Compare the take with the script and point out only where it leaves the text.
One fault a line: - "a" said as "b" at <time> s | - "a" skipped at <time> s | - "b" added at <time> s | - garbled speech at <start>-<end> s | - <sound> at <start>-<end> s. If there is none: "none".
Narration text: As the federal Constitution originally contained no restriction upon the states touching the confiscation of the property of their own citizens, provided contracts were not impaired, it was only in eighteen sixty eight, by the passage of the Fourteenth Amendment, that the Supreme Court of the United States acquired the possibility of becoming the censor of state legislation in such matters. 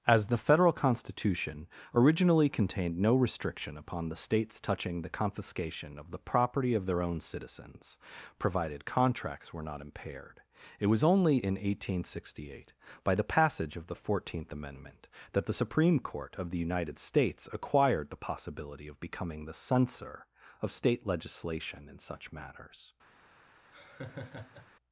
- laugh at 23.7-24.7 s